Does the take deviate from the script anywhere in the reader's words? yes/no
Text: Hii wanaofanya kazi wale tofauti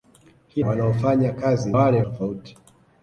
no